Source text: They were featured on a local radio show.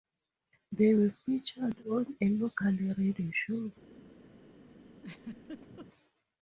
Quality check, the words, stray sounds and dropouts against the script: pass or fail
fail